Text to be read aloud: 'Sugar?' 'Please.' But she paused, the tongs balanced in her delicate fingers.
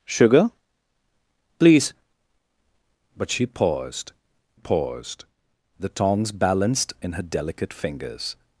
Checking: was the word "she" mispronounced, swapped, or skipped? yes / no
no